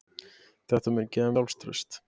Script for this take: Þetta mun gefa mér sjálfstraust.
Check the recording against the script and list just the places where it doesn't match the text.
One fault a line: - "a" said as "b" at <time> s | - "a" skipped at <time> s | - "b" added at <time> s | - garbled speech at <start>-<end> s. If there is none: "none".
- "mér" skipped at 1.4 s